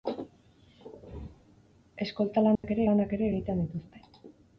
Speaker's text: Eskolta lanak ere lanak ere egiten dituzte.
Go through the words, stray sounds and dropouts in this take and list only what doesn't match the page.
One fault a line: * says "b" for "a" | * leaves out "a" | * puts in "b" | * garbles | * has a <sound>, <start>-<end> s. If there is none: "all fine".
* has a dropout, 2.6-2.6 s